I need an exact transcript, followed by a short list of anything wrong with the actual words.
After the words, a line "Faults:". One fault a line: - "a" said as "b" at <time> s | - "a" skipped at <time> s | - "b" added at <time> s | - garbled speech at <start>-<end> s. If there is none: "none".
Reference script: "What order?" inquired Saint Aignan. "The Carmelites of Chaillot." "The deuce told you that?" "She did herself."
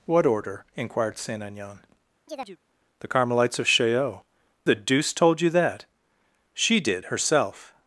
"What order?" inquired Saint Aignan. "The Carmelites of Chaillot." "The deuce told you that?" "She did herself."
Faults:
none